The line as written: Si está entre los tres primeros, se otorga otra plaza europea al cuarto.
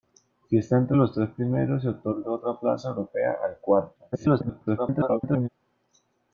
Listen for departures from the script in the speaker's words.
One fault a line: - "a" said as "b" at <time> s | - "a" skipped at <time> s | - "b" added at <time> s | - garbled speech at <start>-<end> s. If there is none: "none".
- garbled speech at 4.1-5.5 s